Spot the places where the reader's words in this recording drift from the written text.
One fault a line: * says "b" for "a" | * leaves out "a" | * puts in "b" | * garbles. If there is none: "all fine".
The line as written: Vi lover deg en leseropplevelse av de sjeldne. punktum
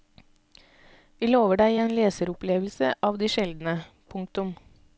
all fine